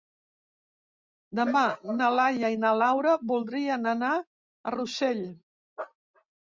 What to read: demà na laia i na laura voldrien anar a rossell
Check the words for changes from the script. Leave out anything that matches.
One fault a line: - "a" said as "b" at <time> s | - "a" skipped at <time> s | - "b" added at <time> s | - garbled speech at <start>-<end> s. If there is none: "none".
none